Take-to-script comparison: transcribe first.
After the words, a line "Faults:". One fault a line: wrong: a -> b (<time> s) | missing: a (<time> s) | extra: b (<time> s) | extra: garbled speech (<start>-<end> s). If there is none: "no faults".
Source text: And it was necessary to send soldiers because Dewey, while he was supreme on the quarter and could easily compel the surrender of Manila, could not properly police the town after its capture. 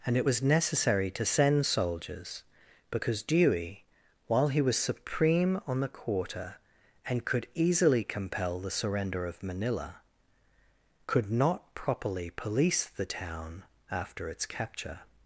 And it was necessary to send soldiers because Dewey, while he was supreme on the quarter and could easily compel the surrender of Manila, could not properly police the town after its capture.
Faults:
no faults